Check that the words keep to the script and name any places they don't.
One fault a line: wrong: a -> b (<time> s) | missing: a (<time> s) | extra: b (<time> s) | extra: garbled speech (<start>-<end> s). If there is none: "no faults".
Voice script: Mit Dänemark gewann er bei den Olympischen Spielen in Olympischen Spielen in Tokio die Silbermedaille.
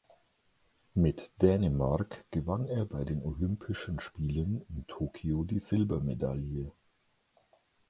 missing: Olympischen Spielen in (4.9 s)